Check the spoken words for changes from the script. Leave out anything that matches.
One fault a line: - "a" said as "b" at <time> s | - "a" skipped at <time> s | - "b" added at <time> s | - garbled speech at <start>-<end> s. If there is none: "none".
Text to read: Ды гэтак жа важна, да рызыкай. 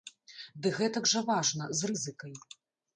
- "да" said as "з" at 1.8 s